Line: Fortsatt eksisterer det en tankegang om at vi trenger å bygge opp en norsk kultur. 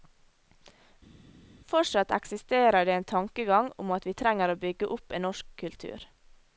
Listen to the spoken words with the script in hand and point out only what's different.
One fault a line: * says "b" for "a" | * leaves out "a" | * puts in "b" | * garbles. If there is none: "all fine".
all fine